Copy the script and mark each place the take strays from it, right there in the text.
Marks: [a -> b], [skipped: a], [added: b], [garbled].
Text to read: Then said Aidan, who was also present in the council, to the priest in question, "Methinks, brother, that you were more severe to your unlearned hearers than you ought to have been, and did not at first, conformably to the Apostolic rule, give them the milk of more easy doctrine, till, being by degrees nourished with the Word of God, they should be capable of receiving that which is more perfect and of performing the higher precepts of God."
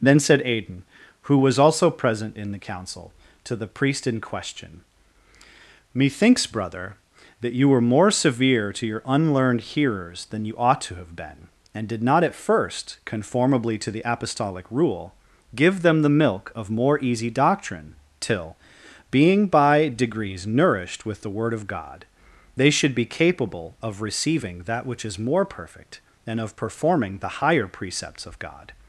Then said Aidan, who was also present in the council, to the priest in question, "Methinks, brother, that you were more severe to your unlearned hearers than you ought to have been, and did not at first, conformably to the Apostolic rule, give them the milk of more easy doctrine, till, being by degrees nourished with the Word of God, they should be capable of receiving that which is more perfect and of performing the higher precepts of God."